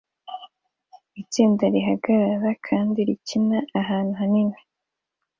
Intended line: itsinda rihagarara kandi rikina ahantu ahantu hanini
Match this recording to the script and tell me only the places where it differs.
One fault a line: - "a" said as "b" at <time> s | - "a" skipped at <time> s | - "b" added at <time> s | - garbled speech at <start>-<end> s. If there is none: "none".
- "ahantu" skipped at 4.1 s